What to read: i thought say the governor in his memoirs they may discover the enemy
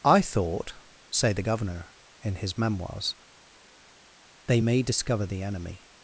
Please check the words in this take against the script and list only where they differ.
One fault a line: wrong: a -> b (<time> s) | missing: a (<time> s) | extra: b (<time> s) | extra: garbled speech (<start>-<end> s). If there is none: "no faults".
no faults